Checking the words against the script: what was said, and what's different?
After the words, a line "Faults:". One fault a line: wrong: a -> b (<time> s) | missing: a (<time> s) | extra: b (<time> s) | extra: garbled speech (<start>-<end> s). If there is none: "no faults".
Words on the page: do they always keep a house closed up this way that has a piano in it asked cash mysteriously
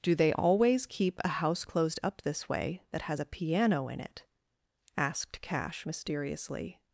do they always keep a house closed up this way that has a piano in it asked cash mysteriously
Faults:
no faults